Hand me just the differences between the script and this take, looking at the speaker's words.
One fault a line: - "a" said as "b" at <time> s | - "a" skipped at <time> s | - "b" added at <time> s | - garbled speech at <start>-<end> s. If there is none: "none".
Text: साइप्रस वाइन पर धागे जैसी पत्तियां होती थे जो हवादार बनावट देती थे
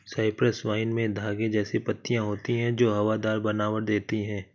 - "पर" said as "में" at 0.9 s
- "थे" said as "हैं" at 2.6 s
- "थे" said as "हैं" at 4.2 s